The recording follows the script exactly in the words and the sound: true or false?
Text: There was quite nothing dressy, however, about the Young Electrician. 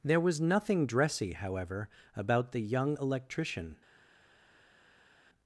false